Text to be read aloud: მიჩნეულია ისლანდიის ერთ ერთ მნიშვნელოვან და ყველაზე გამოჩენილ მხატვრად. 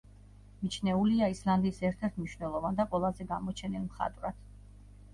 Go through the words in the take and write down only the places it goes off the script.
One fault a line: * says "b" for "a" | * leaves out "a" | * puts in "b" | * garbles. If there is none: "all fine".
all fine